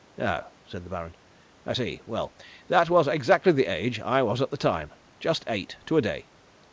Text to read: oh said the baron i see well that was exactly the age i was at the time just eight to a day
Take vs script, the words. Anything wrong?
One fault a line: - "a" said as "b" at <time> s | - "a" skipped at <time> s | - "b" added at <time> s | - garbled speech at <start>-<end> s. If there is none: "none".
none